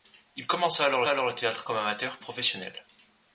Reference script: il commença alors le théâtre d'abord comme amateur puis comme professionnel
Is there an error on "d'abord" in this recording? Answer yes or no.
yes